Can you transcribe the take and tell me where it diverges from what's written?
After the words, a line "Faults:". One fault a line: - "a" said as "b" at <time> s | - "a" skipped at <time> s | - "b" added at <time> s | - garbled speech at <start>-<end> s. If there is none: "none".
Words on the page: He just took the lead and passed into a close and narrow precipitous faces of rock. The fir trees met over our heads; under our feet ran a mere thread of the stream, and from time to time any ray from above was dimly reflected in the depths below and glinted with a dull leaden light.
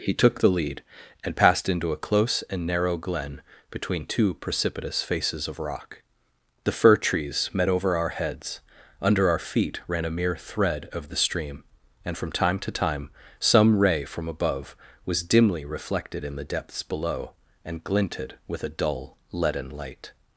He took the lead and passed into a close and narrow glen between two precipitous faces of rock. The fir trees met over our heads; under our feet ran a mere thread of the stream, and from time to time some ray from above was dimly reflected in the depths below and glinted with a dull leaden light.
Faults:
- "just" skipped at 0.1 s
- "glen between two" added at 3.0 s
- "any" said as "some" at 13.4 s